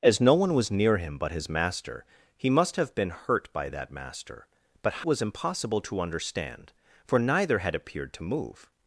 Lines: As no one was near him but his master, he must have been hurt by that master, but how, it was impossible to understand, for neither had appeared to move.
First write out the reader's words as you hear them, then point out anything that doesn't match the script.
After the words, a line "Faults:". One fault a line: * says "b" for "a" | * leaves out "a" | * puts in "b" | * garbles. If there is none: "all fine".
As no one was near him but his master, he must have been hurt by that master, but was impossible to understand, for neither had appeared to move.
Faults:
* leaves out "how it"